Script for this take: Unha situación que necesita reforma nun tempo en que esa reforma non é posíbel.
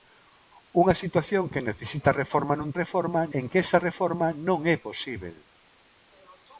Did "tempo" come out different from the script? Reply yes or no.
yes